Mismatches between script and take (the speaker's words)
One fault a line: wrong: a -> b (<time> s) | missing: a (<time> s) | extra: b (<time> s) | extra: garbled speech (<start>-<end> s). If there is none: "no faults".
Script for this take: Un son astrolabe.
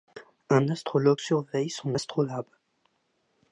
extra: astrologue surveille (0.7 s)